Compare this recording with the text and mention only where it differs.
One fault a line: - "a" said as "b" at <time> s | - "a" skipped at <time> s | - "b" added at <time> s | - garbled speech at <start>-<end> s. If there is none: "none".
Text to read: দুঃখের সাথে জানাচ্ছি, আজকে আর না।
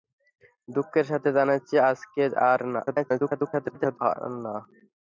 - garbled speech at 2.9-4.0 s